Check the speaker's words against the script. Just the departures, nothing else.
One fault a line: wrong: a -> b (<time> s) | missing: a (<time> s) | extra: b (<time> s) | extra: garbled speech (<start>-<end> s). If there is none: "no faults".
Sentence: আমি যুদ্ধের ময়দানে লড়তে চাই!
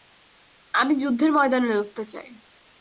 no faults